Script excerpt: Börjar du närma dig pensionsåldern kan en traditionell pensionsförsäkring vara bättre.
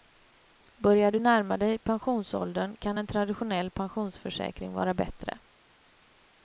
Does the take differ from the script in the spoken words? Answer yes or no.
no